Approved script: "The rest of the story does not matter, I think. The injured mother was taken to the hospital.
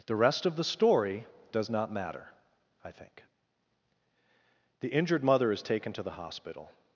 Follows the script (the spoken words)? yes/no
no